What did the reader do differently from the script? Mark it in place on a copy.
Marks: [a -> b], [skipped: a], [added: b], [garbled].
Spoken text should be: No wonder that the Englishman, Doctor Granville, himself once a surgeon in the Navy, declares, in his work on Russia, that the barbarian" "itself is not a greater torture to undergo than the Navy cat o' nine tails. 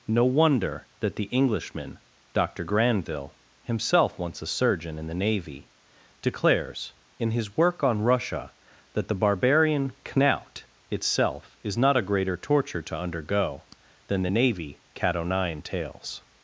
No wonder that the Englishman, Doctor Granville, himself once a surgeon in the Navy, declares, in his work on Russia, that the barbarian" [added: knout] "itself is not a greater torture to undergo than the Navy cat o' nine tails.